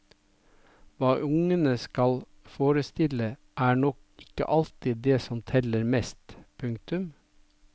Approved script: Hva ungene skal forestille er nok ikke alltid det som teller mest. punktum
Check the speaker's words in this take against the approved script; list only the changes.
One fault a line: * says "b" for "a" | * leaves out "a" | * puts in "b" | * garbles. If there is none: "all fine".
all fine